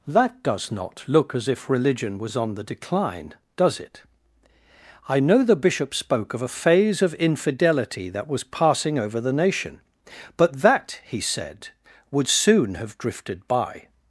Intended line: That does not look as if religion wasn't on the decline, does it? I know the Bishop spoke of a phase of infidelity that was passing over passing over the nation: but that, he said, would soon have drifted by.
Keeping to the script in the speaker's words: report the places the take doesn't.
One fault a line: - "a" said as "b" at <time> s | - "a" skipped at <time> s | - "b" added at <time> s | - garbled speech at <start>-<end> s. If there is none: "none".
- "wasn't" said as "was" at 2.2 s
- "passing over" skipped at 9.2 s